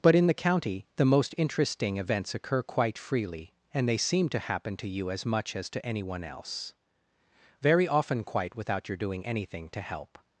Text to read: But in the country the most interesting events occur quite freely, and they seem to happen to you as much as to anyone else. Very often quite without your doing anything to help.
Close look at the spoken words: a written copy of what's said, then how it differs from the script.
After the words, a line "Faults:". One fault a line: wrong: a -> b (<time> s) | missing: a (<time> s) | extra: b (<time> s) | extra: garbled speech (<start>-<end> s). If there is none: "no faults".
But in the county the most interesting events occur quite freely, and they seem to happen to you as much as to anyone else. Very often quite without your doing anything to help.
Faults:
wrong: country -> county (0.3 s)